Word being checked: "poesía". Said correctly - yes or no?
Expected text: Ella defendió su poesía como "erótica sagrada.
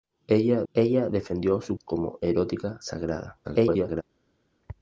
no